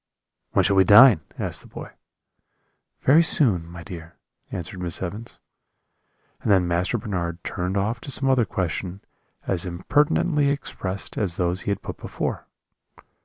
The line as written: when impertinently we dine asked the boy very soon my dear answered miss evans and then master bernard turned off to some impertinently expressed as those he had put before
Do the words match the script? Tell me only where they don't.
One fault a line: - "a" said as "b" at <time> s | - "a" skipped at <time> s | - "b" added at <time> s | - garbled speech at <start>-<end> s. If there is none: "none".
- "impertinently" said as "shall" at 0.6 s
- "other question as" added at 8.3 s